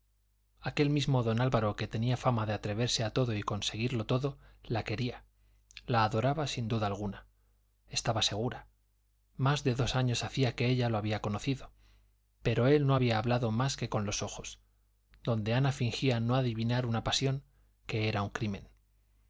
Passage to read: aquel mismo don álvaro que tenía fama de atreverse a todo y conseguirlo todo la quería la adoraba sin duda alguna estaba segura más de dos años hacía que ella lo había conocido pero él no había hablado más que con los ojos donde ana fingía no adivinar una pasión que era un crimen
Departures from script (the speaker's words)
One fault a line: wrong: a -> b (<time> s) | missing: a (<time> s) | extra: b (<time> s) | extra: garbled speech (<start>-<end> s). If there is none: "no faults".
no faults